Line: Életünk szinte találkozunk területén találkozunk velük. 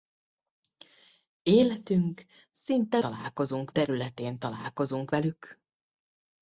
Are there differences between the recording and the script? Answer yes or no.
no